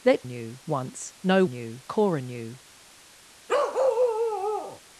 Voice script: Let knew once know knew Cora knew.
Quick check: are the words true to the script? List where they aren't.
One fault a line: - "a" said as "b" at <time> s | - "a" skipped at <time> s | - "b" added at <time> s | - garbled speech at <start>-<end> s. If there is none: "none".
none